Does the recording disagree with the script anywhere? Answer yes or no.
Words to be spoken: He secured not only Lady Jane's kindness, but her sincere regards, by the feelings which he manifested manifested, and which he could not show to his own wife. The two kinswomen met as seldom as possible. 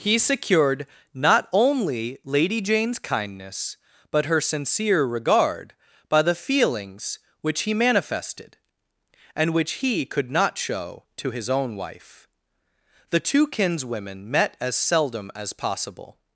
yes